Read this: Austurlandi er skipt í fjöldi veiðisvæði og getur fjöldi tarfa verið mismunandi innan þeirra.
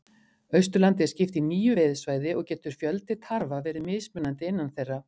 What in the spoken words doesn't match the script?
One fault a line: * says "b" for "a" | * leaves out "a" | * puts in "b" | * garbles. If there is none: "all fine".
* says "níu" for "fjöldi"